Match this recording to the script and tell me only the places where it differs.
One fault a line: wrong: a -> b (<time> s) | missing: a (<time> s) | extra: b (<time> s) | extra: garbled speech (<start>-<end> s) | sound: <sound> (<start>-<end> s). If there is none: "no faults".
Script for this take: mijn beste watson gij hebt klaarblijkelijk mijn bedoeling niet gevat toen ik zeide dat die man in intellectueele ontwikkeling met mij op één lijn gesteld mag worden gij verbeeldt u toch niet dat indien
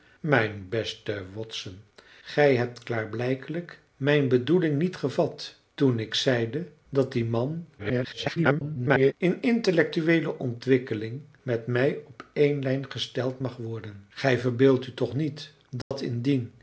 extra: garbled speech (7.8-9.1 s)
sound: dropout (15.8-15.9 s)